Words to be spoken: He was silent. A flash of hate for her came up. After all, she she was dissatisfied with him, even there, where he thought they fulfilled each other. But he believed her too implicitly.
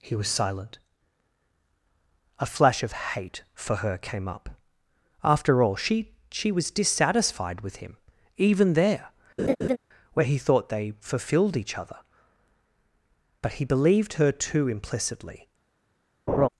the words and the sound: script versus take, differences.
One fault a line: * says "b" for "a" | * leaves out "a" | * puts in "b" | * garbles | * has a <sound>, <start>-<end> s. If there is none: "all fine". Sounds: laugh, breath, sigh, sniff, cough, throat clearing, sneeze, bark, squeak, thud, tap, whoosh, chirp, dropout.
* has a laugh, 9.4-9.8 s
* has a laugh, 16.3-16.5 s